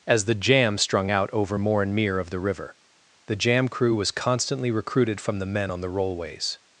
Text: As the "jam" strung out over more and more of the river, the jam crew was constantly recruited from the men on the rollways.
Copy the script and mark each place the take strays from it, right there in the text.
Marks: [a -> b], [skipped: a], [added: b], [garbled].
As the "jam" strung out over more and [more -> mere] of the river, the jam crew was constantly recruited from the men on the rollways.